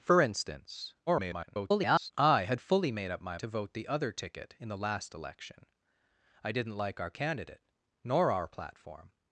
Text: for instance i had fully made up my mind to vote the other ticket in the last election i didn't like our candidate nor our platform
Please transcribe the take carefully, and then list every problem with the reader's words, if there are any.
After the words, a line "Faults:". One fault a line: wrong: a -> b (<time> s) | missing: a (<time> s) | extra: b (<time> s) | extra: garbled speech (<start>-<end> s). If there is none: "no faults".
for instance [garbled] i had fully made up my to vote the other ticket in the last election i didn't like our candidate nor our platform
Faults:
extra: garbled speech (1.1-2.1 s)
missing: mind (3.4 s)